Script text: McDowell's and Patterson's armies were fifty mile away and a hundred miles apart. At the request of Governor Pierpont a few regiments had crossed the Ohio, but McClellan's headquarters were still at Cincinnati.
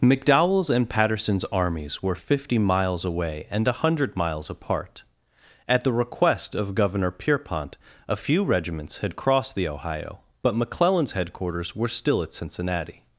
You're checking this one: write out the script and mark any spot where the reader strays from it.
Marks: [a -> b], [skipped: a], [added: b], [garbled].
McDowell's and Patterson's armies were fifty [mile -> miles] away and a hundred miles apart. At the request of Governor Pierpont a few regiments had crossed the Ohio, but McClellan's headquarters were still at Cincinnati.